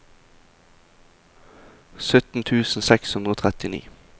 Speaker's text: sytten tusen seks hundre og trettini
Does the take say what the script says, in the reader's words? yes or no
yes